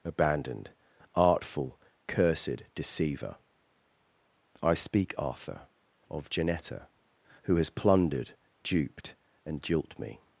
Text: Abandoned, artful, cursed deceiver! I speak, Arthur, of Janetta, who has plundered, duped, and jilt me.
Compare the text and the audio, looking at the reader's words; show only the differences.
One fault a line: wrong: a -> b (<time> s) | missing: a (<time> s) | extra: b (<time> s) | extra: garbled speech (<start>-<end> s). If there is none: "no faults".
no faults